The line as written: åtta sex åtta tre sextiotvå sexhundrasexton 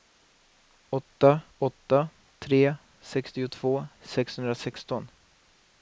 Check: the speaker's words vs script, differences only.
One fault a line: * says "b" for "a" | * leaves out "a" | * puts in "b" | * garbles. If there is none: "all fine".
* leaves out "sex"